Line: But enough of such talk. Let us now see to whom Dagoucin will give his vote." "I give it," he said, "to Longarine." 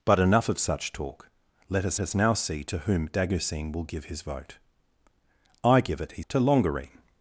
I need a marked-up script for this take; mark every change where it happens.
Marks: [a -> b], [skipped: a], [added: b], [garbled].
But enough of such talk. Let us [added: us] now see to whom Dagoucin will give his vote." "I give it," he [skipped: said,] "to Longarine."